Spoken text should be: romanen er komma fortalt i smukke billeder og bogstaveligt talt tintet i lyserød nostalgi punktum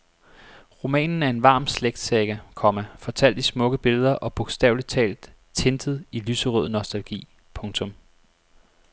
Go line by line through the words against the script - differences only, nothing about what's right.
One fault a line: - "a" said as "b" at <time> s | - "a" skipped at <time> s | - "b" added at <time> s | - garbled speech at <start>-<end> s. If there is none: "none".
- "en varm slægtssaga" added at 1.3 s